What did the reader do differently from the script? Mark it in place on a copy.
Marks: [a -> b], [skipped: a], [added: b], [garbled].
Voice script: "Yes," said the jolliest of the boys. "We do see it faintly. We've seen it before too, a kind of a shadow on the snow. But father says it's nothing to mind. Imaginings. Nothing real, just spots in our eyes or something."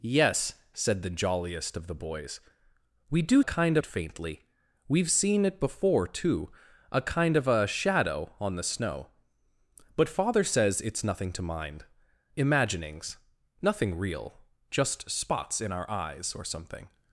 "Yes," said the jolliest of the boys. "We do [see -> kind] it faintly. We've seen it before too, a kind of a shadow on the snow. But father says it's nothing to mind. Imaginings. Nothing real, just spots in our eyes or something."